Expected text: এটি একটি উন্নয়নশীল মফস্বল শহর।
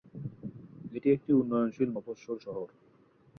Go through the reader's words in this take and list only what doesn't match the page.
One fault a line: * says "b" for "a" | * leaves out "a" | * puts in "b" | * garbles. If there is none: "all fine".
all fine